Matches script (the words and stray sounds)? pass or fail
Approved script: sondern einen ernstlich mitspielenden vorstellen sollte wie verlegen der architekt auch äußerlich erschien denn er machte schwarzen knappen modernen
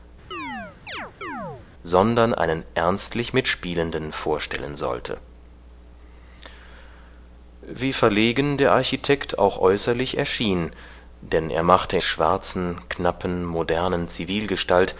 fail